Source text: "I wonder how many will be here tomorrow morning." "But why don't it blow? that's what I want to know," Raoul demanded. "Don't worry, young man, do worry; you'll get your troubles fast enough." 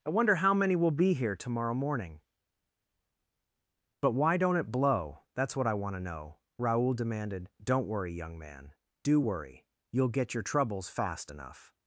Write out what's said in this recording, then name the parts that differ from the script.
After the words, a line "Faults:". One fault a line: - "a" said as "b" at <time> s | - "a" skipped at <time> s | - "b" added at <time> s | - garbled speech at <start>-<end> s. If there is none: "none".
"I wonder how many will be here tomorrow morning." "But why don't it blow? that's what I want to know," Raoul demanded. "Don't worry, young man, do worry; you'll get your troubles fast enough."
Faults:
none